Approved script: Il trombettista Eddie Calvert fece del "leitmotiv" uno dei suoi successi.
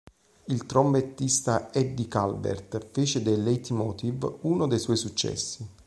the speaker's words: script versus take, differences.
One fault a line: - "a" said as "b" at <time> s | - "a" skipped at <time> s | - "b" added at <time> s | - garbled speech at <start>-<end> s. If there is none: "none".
none